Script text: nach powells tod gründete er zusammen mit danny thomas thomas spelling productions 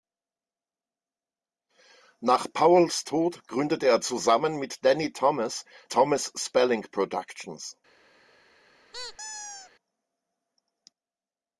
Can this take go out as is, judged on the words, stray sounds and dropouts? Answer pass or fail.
fail